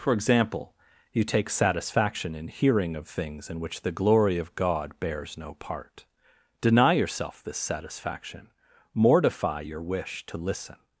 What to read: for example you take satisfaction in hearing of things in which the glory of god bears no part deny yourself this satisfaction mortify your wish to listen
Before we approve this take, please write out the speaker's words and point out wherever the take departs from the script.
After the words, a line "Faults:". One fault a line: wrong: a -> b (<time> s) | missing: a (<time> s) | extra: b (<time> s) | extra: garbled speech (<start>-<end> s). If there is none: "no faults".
for example you take satisfaction in hearing of things in which the glory of god bears no part deny yourself this satisfaction mortify your wish to listen
Faults:
no faults